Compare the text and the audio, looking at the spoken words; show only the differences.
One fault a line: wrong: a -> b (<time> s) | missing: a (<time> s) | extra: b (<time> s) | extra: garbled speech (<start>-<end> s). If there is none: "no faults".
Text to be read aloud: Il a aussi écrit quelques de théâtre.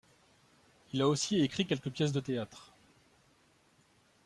extra: pièces (1.9 s)